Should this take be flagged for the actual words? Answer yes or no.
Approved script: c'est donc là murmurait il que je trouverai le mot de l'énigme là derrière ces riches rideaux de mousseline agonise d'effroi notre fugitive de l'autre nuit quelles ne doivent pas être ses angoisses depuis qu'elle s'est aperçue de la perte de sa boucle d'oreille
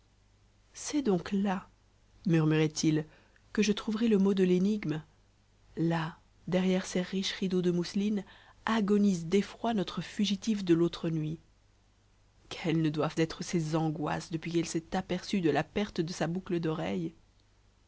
yes